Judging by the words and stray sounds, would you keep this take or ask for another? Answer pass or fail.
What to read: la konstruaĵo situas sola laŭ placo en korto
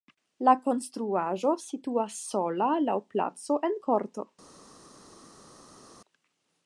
pass